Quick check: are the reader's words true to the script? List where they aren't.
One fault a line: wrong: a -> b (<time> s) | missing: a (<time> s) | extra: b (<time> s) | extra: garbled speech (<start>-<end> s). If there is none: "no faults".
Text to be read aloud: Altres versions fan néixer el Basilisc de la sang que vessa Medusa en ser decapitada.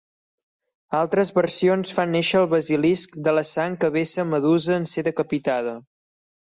no faults